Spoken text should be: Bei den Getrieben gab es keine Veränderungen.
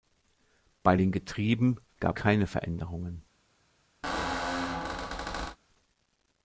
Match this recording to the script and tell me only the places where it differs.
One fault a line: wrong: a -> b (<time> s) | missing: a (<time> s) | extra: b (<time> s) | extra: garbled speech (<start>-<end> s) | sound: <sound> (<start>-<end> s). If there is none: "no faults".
missing: es (2.2 s)
sound: squeak (4.0-5.6 s)